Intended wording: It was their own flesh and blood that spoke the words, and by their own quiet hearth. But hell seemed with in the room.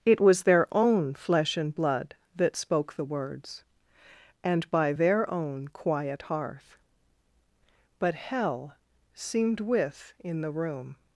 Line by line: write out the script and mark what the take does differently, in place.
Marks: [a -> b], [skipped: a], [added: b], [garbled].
It was their own flesh and blood that spoke the words, and by their own quiet hearth. But hell seemed with in the room.